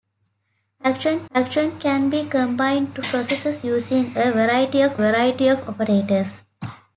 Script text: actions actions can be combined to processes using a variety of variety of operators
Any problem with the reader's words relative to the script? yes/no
no